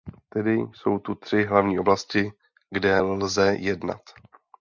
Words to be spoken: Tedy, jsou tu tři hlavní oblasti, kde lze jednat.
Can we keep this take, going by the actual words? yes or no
yes